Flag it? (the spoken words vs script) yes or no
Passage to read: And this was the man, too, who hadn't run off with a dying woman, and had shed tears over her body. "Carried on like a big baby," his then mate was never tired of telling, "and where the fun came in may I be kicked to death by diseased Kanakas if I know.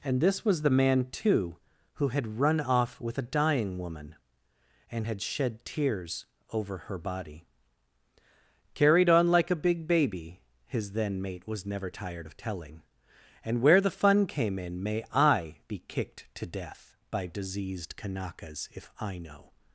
yes